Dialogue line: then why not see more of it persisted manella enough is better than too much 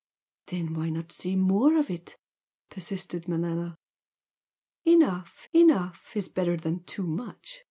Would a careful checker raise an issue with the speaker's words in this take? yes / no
yes